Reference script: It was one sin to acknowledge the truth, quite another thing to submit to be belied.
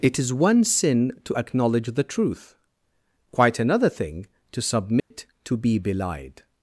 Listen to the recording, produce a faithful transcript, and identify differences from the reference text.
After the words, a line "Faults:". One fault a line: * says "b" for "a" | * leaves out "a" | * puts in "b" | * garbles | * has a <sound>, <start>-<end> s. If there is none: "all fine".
It is one sin to acknowledge the truth, quite another thing to submit to be belied.
Faults:
* says "is" for "was"
* has a dropout, 5.0-5.1 s